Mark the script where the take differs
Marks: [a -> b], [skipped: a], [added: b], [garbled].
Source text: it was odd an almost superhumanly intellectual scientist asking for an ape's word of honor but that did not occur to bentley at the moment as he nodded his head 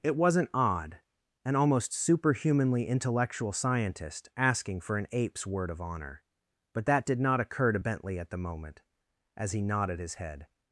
it [was -> wasn't] odd an almost superhumanly intellectual scientist asking for an ape's word of honor but that did not occur to bentley at the moment as he nodded his head